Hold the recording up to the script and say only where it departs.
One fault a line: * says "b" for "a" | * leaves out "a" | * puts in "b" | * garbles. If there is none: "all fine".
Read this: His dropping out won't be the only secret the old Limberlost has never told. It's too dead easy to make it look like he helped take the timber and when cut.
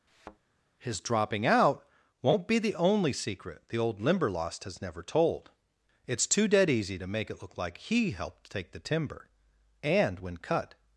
all fine